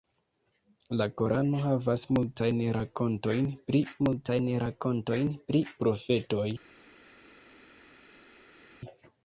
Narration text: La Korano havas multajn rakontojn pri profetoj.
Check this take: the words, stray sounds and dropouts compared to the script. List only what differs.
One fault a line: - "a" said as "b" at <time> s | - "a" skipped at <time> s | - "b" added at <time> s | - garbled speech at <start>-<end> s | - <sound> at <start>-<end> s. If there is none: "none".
- "multajn rakontojn pri" added at 4.1 s